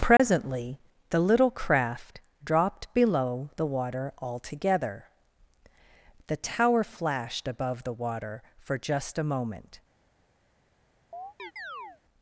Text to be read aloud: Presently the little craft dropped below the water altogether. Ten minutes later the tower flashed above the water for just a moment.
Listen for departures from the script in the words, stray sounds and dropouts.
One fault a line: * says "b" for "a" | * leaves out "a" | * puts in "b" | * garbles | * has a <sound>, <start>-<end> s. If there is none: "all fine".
* has a dropout, 0.2-0.2 s
* leaves out "Ten minutes later"
* has a chirp, 11.1-12.0 s